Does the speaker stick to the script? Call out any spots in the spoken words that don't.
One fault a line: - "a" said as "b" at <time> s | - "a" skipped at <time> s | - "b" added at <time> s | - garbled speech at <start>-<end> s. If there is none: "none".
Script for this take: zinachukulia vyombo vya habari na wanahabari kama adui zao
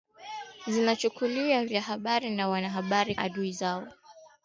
- "vyombo" skipped at 1.6 s
- "kama" skipped at 3.1 s